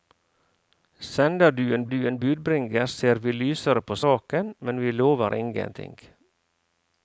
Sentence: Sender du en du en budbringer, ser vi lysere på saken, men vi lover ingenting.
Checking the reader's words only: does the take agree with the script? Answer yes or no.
yes